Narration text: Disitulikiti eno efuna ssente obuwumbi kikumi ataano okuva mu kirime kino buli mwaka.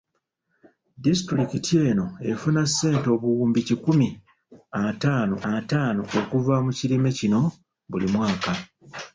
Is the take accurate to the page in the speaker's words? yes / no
no